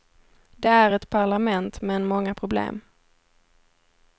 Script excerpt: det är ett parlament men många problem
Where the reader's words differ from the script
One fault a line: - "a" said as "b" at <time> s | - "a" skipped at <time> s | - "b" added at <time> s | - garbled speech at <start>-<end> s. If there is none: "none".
none